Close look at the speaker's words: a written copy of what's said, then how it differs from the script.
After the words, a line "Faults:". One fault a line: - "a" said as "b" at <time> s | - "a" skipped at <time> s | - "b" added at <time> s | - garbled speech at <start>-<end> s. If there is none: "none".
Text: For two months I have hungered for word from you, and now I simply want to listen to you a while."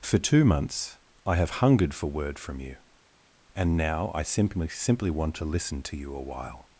For two months I have hungered for word from you, and now I simply simply want to listen to you a while."
Faults:
- "simply" added at 4.7 s